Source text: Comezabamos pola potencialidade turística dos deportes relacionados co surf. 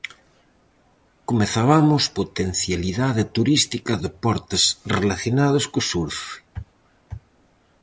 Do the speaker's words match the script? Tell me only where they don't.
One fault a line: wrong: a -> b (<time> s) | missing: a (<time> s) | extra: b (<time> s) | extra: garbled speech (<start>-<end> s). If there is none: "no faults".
missing: pola (2.0 s)
missing: dos (3.9 s)